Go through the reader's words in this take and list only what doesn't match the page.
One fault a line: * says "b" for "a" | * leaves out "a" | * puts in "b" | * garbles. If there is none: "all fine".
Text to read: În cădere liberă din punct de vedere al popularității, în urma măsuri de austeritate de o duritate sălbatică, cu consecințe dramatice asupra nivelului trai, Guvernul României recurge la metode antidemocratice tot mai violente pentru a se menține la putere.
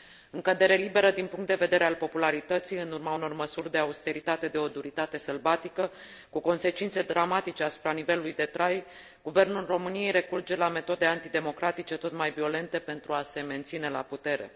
* puts in "unor"
* puts in "de"